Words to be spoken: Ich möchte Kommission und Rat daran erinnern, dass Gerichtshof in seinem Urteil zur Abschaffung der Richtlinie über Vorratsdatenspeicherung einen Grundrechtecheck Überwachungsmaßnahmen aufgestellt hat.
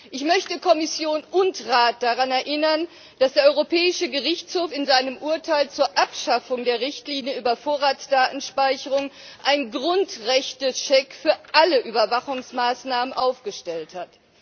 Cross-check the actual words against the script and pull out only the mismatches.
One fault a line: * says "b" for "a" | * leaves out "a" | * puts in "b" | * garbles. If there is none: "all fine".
* puts in "der Europäische"
* puts in "für alle"